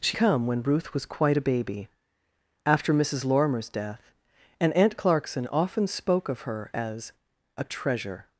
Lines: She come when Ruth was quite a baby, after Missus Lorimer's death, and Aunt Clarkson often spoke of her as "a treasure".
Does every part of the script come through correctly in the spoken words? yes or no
yes